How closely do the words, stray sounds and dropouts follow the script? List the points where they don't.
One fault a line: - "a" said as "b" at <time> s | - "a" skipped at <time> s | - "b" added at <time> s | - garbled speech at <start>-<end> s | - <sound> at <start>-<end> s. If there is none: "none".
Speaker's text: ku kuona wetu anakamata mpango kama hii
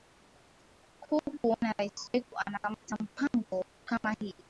- "rais" added at 1.8 s